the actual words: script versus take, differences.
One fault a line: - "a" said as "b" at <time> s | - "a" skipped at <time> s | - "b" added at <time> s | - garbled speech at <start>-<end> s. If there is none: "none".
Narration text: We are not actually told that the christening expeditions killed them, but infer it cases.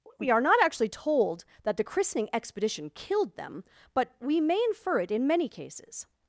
- "expeditions" said as "expedition" at 2.3 s
- "we may" added at 4.2 s
- "in many" added at 5.1 s